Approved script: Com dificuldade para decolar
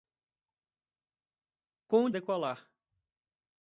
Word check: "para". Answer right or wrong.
wrong